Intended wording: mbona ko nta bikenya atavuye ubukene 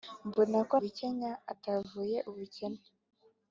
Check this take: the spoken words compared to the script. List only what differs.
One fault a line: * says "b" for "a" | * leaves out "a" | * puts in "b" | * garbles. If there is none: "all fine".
* leaves out "nta"